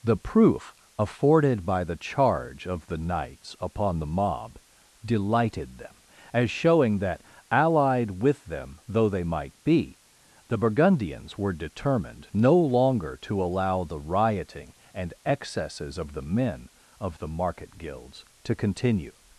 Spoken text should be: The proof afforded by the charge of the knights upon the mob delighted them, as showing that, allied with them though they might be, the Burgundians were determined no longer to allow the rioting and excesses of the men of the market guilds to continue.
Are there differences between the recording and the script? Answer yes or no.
no